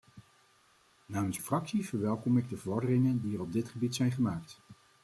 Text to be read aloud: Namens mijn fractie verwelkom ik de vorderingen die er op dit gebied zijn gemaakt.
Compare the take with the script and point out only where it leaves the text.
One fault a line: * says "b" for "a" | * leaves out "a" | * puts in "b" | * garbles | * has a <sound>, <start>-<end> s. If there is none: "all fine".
* leaves out "mijn"